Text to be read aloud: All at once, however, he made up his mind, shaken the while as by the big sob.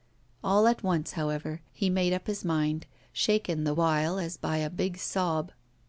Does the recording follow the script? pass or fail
fail